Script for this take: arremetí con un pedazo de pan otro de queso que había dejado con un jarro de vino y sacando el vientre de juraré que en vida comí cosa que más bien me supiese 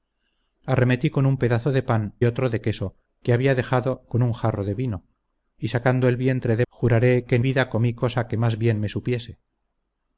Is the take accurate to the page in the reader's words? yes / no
yes